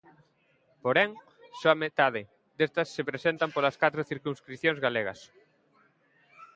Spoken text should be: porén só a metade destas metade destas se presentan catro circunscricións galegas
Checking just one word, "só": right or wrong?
right